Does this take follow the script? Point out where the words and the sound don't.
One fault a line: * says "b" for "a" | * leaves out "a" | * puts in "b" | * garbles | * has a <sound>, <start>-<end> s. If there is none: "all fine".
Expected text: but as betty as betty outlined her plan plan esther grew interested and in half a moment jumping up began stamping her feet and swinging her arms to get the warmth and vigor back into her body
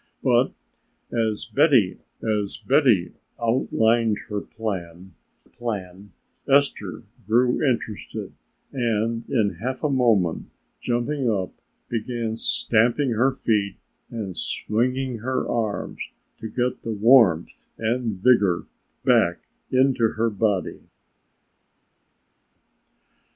all fine